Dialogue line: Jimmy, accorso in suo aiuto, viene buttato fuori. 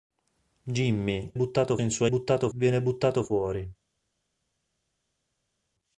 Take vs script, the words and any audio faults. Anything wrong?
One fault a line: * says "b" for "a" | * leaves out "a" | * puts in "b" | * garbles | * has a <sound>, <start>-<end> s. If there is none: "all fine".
* says "buttato" for "accorso"
* says "buttato" for "aiuto"